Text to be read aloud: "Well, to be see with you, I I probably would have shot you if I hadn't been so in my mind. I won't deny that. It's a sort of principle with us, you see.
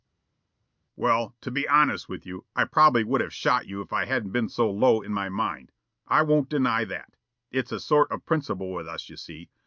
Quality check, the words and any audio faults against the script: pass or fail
fail